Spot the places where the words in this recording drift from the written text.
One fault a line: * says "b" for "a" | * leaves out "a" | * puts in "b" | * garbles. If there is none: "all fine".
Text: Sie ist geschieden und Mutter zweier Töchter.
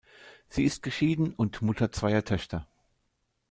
all fine